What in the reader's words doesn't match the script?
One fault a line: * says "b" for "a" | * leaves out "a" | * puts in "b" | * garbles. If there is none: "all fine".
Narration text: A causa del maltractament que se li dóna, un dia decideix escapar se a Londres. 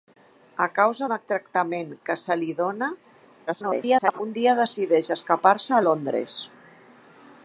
* leaves out "del"
* garbles